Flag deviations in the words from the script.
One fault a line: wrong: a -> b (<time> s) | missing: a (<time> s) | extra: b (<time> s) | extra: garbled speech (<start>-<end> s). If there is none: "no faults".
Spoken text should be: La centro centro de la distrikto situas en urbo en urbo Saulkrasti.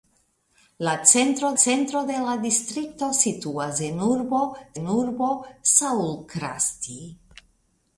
no faults